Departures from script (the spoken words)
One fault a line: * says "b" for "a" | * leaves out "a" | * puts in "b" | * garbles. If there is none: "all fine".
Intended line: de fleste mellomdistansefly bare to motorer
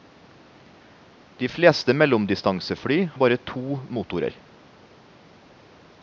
all fine